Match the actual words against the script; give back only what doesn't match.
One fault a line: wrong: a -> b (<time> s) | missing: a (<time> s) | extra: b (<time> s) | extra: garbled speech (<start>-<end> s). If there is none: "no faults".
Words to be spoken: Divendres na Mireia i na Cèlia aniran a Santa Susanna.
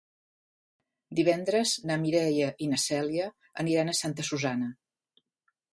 no faults